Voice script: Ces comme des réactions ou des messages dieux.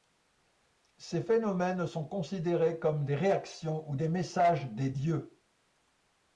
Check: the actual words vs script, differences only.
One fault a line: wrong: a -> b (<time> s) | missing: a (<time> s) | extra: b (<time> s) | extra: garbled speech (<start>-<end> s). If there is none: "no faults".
extra: phénomènes sont considérés (1.2 s)
extra: des (4.7 s)